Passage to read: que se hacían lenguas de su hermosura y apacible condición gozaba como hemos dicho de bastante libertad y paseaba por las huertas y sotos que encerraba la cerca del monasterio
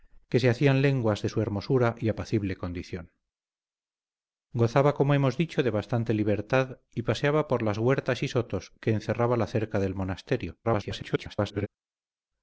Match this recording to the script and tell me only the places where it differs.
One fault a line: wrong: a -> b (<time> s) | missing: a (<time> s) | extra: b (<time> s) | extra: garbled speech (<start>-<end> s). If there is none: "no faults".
extra: garbled speech (10.6-11.7 s)